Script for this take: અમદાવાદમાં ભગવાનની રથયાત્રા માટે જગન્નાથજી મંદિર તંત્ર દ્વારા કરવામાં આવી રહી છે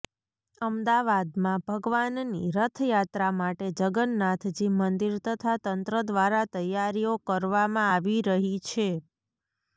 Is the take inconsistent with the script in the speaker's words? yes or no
yes